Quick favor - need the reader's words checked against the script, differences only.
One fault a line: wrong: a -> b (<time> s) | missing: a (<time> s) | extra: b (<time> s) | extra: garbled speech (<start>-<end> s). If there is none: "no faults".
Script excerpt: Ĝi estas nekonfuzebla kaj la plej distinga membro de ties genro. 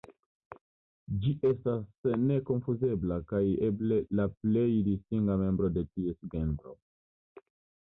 extra: eble (3.7 s)